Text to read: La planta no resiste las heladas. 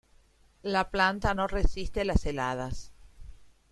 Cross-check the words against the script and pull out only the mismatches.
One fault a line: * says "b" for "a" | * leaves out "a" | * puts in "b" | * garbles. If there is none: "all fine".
all fine